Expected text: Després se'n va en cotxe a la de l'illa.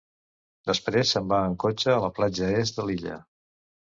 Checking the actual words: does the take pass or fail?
fail